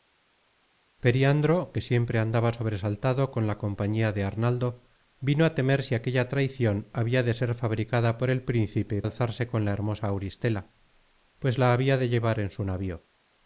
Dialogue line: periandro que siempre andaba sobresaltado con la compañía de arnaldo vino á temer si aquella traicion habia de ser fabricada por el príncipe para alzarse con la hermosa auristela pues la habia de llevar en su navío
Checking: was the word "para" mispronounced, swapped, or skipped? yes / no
yes